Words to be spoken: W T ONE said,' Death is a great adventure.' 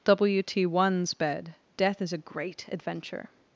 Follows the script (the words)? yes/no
no